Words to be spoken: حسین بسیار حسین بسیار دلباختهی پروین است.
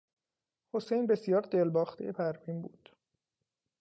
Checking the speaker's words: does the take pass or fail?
fail